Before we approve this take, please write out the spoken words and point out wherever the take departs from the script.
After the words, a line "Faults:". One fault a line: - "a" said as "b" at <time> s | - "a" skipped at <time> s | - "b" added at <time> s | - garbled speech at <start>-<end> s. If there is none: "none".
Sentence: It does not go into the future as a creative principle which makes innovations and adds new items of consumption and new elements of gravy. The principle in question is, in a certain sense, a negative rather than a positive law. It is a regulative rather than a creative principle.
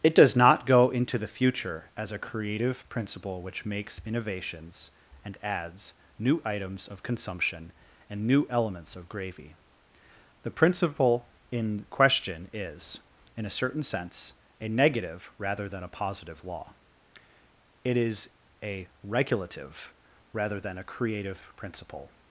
It does not go into the future as a creative principle which makes innovations and adds new items of consumption and new elements of gravy. The principle in question is, in a certain sense, a negative rather than a positive law. It is a regulative rather than a creative principle.
Faults:
none